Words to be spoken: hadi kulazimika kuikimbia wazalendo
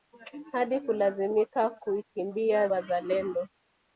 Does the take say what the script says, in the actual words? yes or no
yes